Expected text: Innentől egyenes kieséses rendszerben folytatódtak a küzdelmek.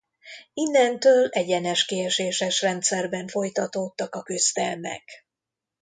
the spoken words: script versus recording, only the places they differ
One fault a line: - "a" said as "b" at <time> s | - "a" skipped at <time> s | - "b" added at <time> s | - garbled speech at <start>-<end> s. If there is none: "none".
none